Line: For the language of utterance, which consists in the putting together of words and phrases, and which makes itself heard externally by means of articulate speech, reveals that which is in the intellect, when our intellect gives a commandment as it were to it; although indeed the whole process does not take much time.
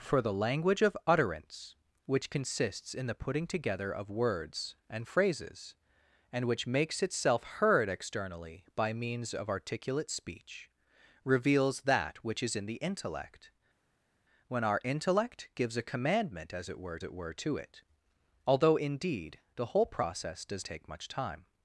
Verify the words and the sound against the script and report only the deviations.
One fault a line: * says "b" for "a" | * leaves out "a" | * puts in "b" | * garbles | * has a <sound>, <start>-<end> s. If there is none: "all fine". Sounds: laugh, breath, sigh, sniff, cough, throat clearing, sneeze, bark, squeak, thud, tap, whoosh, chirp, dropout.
* puts in "it were"
* leaves out "not"